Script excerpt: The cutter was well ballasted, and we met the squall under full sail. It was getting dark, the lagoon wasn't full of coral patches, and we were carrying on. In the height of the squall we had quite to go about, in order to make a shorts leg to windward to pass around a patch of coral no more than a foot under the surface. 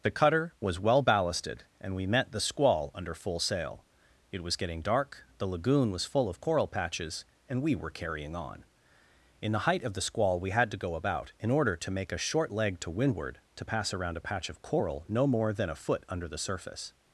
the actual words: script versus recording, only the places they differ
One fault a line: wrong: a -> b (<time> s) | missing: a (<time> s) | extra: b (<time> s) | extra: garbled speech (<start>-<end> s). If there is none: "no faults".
wrong: wasn't -> was (5.9 s)
missing: quite (10.7 s)
wrong: shorts -> short (12.2 s)